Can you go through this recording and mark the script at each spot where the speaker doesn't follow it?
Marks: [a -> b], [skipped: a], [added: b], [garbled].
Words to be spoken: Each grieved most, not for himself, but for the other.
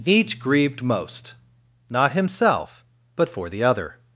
Each grieved most, not [skipped: for] himself, but for the other.